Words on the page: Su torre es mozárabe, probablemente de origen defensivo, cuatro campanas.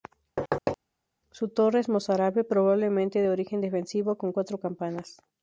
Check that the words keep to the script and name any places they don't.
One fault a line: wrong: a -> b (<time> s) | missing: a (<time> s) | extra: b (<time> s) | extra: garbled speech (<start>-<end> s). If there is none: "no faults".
extra: con (4.2 s)